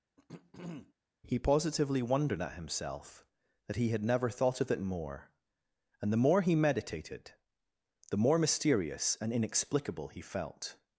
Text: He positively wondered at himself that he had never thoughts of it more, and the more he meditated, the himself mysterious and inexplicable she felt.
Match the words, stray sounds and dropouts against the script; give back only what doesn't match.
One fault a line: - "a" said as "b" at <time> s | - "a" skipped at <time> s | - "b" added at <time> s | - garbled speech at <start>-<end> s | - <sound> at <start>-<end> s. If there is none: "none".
- throat clearing at 0.2-0.9 s
- "thoughts" said as "thought" at 4.3 s
- "himself" said as "more" at 8.2 s
- "she" said as "he" at 10.1 s